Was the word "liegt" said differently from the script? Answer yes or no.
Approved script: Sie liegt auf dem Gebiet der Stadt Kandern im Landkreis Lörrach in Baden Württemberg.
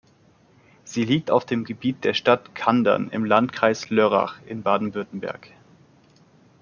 no